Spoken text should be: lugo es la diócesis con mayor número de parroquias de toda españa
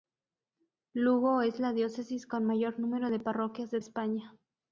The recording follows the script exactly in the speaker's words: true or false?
false